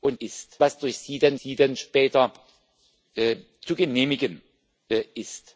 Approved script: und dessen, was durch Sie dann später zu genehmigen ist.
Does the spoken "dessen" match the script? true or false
false